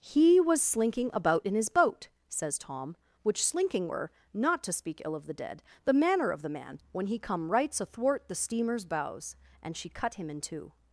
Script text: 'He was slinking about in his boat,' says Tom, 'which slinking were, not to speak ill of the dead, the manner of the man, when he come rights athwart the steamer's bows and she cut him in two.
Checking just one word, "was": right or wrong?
right